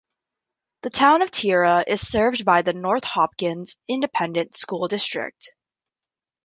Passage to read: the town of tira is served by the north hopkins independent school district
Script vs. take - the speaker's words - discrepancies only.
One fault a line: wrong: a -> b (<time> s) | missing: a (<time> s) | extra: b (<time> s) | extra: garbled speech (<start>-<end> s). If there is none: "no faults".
no faults